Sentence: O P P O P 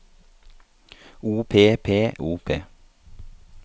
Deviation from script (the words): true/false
false